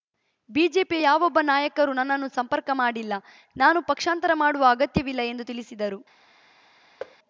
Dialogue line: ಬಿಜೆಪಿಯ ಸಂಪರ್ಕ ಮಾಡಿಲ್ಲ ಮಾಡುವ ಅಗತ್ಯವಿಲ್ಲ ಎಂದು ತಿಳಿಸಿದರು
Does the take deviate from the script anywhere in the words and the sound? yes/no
yes